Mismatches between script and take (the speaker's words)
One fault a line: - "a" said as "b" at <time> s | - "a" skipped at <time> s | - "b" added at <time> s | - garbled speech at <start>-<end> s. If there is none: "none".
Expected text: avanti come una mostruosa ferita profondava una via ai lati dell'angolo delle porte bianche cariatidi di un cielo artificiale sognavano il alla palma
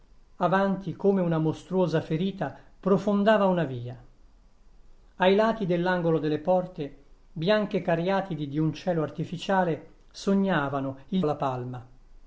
none